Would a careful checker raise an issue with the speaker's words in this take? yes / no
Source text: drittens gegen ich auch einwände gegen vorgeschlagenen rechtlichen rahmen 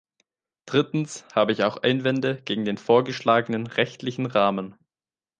yes